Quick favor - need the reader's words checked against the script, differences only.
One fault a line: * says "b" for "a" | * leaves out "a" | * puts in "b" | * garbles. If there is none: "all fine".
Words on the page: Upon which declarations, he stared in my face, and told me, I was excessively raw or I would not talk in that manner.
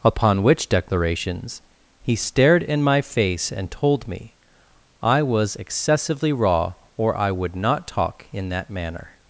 all fine